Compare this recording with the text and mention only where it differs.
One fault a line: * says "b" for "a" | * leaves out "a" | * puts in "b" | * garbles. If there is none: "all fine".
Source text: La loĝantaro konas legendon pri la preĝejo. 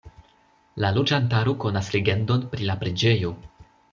all fine